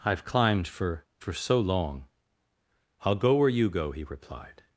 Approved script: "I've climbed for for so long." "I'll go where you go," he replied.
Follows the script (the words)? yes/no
yes